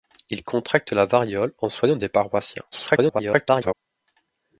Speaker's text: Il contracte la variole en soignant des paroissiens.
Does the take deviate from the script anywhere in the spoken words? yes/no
yes